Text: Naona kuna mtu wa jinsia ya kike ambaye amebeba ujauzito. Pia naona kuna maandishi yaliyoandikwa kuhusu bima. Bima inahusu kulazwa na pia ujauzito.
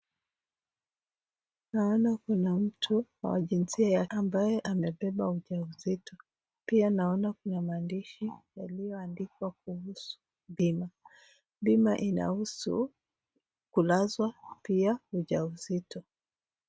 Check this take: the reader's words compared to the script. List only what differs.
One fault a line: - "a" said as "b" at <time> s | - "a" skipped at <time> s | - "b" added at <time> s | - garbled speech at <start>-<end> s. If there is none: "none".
- "kike" skipped at 4.0 s
- "na" skipped at 14.3 s